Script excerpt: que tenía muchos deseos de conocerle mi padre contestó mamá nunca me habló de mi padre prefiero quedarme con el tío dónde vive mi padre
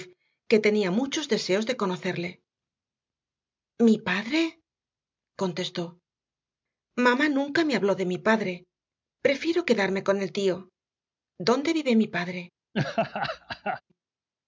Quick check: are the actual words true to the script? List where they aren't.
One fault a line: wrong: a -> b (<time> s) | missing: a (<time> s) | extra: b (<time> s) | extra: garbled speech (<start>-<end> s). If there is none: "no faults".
no faults